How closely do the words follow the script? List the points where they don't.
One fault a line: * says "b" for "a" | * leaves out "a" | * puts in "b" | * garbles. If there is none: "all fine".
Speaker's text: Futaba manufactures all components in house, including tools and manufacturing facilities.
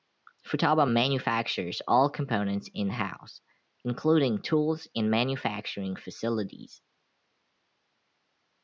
all fine